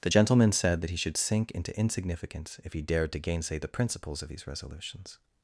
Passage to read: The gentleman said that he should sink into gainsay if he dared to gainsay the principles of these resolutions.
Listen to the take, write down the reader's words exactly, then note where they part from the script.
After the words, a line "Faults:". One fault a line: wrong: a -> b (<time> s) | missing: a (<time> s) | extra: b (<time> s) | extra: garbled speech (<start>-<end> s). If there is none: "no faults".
The gentleman said that he should sink into insignificance if he dared to gainsay the principles of these resolutions.
Faults:
wrong: gainsay -> insignificance (1.8 s)